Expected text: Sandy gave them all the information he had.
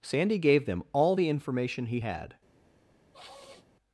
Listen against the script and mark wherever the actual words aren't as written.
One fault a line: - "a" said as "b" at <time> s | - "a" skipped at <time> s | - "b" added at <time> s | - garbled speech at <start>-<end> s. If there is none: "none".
none